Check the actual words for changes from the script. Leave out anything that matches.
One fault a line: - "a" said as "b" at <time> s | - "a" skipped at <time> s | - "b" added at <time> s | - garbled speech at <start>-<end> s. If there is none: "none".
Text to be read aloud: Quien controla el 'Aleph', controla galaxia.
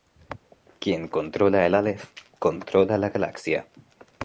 - "la" added at 3.0 s